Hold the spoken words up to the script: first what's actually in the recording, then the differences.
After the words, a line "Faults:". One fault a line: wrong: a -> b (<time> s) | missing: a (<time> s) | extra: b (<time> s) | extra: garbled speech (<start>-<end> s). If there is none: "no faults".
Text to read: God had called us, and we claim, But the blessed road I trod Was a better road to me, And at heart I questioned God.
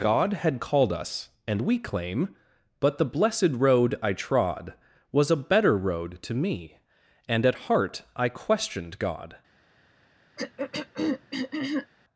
God had called us, and we claim, But the blessed road I trod Was a better road to me, And at heart I questioned God.
Faults:
no faults